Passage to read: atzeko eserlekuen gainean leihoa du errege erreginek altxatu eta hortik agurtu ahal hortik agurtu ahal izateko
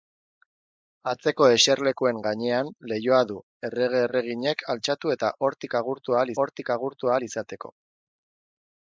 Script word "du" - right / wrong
right